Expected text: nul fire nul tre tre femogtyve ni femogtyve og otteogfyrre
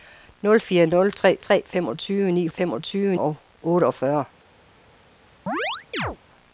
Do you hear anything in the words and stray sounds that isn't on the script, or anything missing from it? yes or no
yes